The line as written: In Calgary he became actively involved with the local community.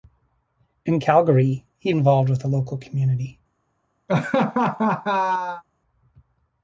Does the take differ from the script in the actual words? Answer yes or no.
yes